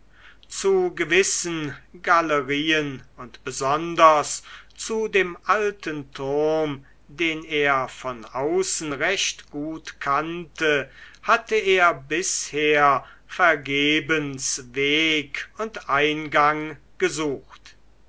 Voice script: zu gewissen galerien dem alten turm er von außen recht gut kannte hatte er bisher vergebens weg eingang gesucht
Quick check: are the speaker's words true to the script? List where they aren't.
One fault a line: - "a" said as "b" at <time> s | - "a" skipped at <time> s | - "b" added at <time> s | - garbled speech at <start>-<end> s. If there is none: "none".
- "und besonders zu" added at 3.2 s
- "den" added at 7.1 s
- "und" added at 15.6 s